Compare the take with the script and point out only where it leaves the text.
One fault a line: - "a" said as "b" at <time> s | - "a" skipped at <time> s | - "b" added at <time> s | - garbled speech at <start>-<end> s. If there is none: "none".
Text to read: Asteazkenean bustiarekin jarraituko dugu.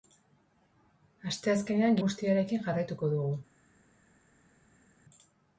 none